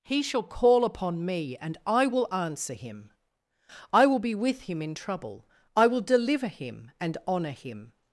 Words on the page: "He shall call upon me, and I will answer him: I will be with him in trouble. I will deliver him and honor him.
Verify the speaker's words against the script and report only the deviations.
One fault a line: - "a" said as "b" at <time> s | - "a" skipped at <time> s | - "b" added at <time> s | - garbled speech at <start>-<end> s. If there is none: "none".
none